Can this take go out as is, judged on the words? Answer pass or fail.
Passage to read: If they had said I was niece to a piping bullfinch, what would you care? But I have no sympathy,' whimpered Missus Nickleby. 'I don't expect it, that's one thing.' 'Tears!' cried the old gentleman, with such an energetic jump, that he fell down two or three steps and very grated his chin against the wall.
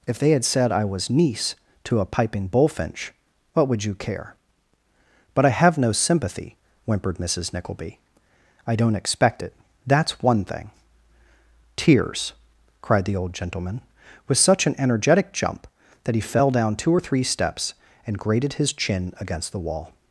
fail